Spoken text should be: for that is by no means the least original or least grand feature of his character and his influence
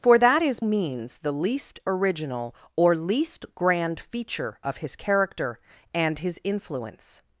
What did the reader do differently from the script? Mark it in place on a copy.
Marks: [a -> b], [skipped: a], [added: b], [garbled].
for that is [skipped: by no] means the least original or least grand feature of his character and his influence